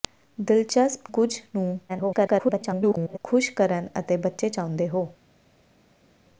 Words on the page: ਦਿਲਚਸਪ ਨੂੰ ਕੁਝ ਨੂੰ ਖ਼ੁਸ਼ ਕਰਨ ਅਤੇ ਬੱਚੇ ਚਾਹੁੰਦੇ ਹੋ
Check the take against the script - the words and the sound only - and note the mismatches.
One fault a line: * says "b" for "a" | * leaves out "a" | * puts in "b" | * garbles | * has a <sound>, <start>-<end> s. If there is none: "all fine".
* leaves out "ਨੂੰ"
* garbles